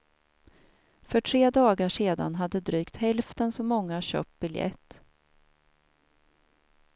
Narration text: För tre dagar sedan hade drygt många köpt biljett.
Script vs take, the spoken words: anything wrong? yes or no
yes